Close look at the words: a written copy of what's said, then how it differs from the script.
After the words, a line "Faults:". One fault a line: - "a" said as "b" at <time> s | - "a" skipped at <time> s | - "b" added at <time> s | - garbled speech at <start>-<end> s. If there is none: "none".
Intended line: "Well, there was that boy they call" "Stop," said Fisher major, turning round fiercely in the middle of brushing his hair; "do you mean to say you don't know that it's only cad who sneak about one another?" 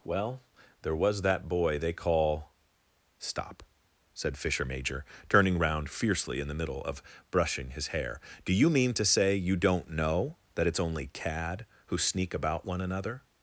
"Well, there was that boy they call" "Stop," said Fisher major, turning round fiercely in the middle of brushing his hair; "do you mean to say you don't know that it's only cad who sneak about one another?"
Faults:
none